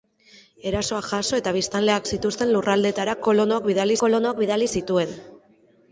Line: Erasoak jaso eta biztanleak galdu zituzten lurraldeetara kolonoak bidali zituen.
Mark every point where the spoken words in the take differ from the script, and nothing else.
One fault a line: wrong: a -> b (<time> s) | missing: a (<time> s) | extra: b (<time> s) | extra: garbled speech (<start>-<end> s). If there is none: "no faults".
missing: galdu (2.1 s)
extra: kolonoak bidali (4.1 s)